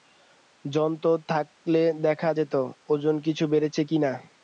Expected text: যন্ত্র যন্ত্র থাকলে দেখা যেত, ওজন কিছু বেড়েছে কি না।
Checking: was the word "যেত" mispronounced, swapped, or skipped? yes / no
no